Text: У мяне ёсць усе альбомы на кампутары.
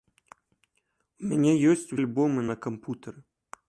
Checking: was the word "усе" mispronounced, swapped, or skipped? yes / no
yes